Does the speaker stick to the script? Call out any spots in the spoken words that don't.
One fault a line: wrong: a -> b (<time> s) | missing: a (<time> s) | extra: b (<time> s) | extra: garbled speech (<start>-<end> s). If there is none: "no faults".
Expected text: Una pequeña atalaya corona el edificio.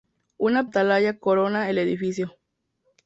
missing: pequeña (0.7 s)